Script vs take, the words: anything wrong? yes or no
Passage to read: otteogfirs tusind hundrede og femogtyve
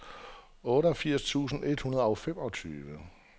yes